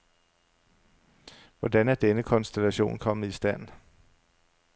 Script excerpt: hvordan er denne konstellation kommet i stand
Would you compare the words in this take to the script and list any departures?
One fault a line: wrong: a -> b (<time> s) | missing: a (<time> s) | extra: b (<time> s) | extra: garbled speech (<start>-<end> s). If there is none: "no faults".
no faults